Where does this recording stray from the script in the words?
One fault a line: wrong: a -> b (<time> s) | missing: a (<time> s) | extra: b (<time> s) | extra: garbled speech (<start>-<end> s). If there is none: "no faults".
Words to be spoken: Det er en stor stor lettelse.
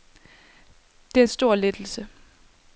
missing: stor (1.5 s)